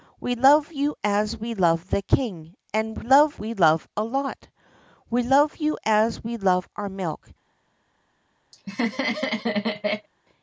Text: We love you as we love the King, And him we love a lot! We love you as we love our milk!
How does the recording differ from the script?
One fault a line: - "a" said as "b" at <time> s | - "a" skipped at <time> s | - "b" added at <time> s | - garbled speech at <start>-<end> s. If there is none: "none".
- "him" said as "love" at 3.0 s